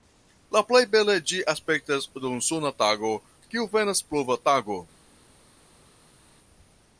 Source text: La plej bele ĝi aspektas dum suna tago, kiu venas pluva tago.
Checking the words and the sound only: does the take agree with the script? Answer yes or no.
yes